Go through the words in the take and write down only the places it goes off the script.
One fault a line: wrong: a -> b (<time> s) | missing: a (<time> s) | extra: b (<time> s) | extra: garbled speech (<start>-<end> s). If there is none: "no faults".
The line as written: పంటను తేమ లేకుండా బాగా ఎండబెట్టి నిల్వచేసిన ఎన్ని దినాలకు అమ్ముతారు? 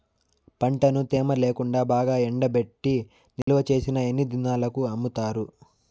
no faults